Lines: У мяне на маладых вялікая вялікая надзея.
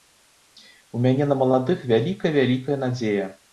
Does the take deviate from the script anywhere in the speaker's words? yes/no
no